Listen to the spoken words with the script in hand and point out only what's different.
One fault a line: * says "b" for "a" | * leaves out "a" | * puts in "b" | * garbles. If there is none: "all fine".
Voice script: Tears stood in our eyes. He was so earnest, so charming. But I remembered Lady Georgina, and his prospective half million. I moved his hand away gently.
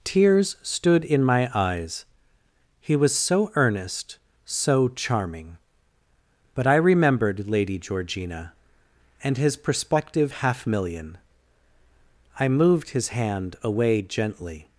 * says "my" for "our"